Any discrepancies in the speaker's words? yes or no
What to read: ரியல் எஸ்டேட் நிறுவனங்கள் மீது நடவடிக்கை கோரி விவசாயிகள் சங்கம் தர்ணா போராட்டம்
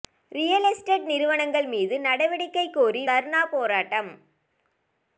yes